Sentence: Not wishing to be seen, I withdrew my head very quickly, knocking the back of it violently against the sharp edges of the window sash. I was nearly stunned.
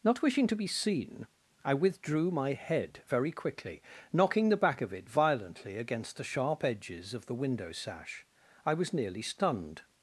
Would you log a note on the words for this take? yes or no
no